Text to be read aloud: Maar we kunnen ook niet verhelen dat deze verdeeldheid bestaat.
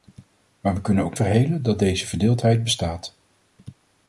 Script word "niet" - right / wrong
wrong